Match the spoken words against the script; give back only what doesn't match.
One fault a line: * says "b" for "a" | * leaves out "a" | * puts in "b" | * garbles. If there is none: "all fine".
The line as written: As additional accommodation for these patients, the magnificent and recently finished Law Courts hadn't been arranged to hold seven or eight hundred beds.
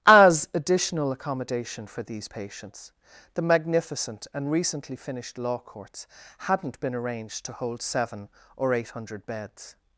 all fine